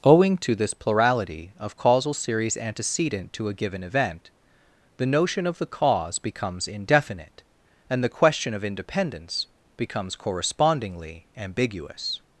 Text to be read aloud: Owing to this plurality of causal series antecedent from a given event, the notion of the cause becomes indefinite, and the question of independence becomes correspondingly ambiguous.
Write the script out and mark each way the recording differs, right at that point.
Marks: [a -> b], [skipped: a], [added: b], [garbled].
Owing to this plurality of causal series antecedent [from -> to] a given event, the notion of the cause becomes indefinite, and the question of independence becomes correspondingly ambiguous.